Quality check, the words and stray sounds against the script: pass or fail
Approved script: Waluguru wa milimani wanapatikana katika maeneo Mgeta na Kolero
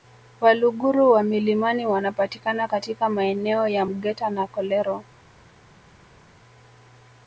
fail